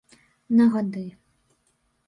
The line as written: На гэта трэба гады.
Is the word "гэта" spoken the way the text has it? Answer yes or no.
no